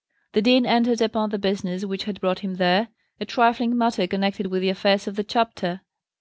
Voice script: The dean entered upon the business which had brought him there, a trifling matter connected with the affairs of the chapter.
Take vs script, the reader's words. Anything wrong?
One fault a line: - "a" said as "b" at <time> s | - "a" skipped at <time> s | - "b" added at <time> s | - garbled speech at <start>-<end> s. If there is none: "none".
none